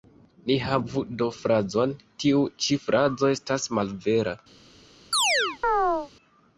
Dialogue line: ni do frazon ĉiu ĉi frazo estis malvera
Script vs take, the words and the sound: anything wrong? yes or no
yes